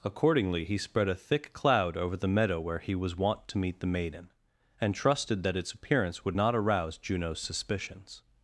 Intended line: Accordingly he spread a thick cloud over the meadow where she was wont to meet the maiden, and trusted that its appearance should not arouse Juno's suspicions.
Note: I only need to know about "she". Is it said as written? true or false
false